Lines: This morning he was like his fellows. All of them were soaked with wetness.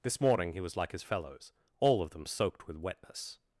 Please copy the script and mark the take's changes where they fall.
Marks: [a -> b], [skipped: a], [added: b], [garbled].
This morning he was like his fellows. All of them [skipped: were] soaked with wetness.